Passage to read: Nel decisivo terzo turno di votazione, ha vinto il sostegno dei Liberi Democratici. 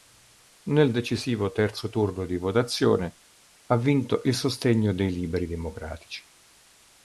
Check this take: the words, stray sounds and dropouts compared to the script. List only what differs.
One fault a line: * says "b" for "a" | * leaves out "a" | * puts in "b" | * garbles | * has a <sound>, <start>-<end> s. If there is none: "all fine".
all fine